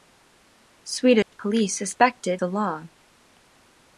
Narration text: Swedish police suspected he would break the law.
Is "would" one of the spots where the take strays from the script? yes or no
yes